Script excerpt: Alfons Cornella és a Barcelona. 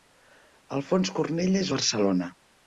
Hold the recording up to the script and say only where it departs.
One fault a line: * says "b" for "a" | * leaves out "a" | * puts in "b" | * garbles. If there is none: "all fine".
all fine